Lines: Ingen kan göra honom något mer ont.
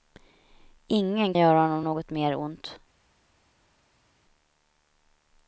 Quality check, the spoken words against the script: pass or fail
fail